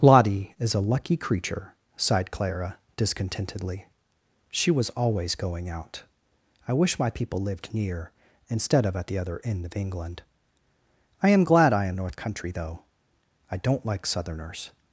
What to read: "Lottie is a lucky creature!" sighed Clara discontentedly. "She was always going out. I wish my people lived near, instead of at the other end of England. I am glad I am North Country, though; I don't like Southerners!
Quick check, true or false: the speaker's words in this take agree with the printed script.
true